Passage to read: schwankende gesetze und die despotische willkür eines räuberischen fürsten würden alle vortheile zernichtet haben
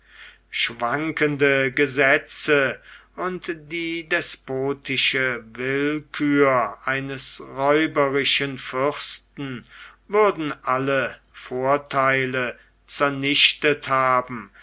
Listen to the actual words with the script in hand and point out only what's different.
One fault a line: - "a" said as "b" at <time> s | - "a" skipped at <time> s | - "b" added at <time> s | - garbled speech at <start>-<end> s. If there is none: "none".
none